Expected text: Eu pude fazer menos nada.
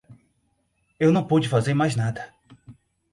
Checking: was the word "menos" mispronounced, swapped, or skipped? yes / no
yes